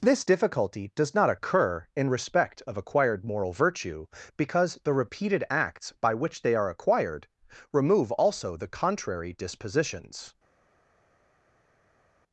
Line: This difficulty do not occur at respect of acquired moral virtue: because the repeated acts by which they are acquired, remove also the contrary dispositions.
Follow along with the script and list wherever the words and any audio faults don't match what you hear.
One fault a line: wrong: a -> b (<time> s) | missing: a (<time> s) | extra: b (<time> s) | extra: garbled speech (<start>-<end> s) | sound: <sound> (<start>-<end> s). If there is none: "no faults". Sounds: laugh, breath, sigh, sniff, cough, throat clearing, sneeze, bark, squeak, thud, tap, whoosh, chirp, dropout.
wrong: do -> does (1.0 s)
wrong: at -> in (1.9 s)